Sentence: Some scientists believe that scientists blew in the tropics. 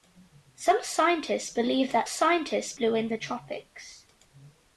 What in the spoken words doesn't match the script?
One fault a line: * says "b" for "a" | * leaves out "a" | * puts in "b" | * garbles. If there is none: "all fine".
all fine